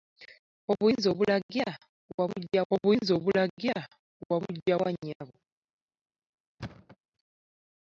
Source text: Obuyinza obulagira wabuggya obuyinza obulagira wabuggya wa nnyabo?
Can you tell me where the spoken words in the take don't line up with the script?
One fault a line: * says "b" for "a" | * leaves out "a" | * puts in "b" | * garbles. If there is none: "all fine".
all fine